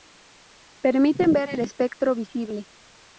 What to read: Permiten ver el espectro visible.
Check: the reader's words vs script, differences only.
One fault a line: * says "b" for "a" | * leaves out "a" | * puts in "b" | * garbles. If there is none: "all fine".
all fine